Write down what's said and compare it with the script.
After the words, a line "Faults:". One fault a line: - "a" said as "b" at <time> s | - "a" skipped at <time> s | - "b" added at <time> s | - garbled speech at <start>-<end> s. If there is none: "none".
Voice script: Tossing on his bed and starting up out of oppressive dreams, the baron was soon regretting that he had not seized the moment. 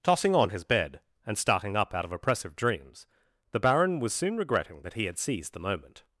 Tossing on his bed and starting up out of oppressive dreams, the baron was soon regretting that he had seized the moment.
Faults:
- "not" skipped at 5.2 s